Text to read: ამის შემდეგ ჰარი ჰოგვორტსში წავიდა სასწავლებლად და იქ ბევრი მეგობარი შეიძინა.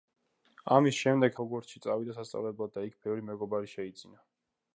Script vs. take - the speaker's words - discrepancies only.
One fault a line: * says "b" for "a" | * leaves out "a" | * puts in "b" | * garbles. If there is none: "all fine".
* leaves out "ჰარი"